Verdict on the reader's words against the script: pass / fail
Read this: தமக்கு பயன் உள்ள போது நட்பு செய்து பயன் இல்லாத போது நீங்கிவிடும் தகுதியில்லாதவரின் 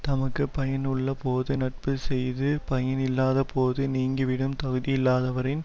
pass